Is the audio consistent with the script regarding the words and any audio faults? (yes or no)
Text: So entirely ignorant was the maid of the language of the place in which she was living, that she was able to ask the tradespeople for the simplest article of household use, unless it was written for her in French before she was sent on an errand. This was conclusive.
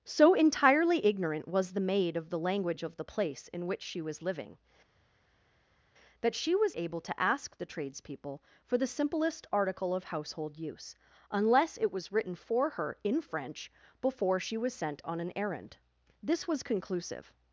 yes